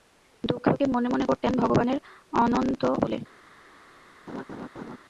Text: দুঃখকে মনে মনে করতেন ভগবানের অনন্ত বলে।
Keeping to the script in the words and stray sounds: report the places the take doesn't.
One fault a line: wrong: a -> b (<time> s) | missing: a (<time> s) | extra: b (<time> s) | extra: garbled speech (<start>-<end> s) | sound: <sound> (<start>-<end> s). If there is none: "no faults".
sound: laugh (4.3-5.0 s)